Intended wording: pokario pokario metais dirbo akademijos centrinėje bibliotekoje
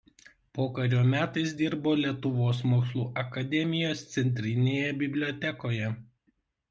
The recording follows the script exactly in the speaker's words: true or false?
false